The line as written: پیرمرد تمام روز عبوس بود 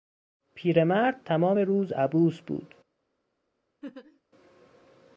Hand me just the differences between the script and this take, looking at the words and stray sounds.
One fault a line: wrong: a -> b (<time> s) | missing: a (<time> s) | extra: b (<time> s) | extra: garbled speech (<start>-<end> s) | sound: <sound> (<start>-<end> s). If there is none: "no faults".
sound: laugh (3.8-4.2 s)